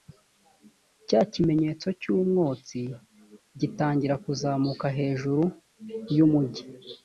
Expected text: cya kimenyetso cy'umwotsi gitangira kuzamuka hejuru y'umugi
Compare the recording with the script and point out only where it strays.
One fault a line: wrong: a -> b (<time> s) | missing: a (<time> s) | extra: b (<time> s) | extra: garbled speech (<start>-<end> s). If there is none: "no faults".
no faults